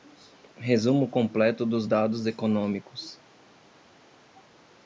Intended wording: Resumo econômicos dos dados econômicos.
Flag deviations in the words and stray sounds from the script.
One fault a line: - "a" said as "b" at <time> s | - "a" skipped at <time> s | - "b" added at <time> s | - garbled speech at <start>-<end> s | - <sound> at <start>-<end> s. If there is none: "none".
- "econômicos" said as "completo" at 1.1 s